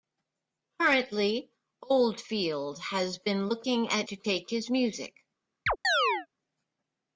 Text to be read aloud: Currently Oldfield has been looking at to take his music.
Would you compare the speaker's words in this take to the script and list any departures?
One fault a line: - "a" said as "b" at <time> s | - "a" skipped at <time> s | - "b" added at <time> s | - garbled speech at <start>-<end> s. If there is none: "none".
none